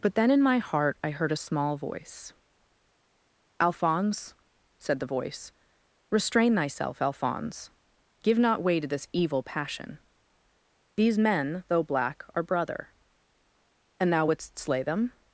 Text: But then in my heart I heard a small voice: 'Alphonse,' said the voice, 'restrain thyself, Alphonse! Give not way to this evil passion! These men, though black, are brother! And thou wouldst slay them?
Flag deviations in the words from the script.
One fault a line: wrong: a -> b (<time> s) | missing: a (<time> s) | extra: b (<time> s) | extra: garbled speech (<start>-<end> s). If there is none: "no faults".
no faults